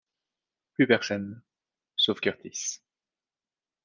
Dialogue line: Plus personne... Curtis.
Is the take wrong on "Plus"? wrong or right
right